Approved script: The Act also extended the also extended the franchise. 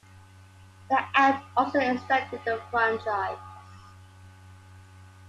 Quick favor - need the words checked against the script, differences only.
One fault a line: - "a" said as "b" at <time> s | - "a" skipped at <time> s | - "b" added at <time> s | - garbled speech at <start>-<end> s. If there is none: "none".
- "also extended the" skipped at 2.6 s